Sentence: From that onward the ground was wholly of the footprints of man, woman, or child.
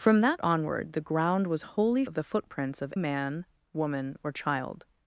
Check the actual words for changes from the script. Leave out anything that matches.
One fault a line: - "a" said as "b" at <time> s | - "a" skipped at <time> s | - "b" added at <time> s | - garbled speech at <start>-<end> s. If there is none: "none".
none